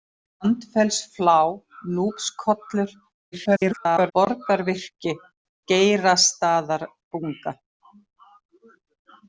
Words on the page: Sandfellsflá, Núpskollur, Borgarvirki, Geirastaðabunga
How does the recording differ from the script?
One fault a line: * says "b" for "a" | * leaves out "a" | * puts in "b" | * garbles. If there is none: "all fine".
* garbles